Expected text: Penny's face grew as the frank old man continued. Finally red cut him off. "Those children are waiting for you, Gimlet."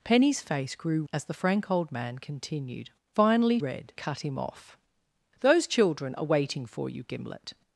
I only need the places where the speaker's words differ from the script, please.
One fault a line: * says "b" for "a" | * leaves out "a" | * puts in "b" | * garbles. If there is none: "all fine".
all fine